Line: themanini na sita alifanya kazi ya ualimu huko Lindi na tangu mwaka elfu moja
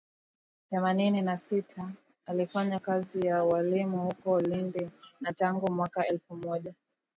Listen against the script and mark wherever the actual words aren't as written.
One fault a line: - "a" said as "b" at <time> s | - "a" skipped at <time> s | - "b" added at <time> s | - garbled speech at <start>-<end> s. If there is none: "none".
none